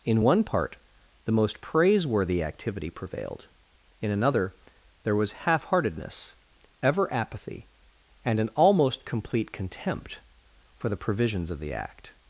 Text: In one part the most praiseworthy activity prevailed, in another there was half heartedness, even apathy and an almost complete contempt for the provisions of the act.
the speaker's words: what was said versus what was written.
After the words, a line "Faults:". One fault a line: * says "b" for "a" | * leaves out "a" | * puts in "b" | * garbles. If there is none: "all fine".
In one part the most praiseworthy activity prevailed, in another there was half heartedness, ever apathy and an almost complete contempt for the provisions of the act.
Faults:
* says "ever" for "even"